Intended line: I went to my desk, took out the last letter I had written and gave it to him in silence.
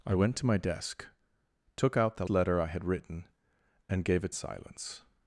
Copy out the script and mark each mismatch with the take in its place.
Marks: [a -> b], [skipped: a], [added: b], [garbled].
I went to my desk, took out the [skipped: last] letter I had written and gave it [skipped: to him in] silence.